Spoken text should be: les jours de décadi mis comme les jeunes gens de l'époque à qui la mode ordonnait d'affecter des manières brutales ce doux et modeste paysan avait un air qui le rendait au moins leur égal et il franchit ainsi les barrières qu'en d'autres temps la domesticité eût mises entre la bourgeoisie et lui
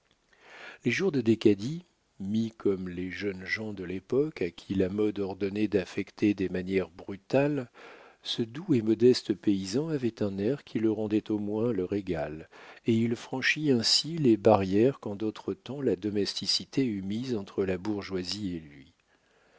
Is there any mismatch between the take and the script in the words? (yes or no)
no